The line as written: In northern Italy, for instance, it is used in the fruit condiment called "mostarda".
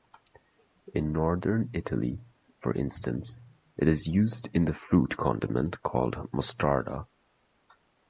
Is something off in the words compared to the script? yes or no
no